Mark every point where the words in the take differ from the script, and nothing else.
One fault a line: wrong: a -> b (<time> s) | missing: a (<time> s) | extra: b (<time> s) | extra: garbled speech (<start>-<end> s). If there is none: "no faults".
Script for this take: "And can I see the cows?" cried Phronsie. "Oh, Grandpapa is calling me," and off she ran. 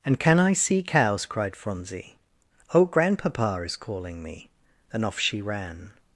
missing: the (0.8 s)